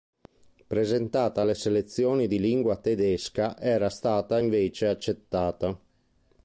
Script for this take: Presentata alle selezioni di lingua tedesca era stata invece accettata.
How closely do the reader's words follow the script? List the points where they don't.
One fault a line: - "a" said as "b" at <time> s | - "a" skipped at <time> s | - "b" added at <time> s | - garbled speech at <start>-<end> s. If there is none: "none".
none